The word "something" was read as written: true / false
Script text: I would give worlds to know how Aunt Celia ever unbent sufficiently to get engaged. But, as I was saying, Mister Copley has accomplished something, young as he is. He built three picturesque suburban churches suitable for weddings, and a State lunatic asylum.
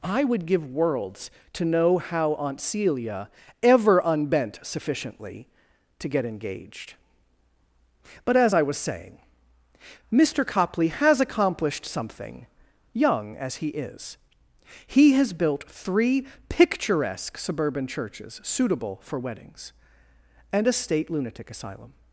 true